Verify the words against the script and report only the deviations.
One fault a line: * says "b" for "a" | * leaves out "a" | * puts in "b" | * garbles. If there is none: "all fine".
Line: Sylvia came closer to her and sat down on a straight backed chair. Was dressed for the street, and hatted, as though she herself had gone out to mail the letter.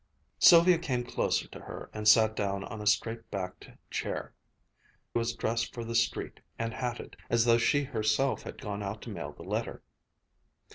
all fine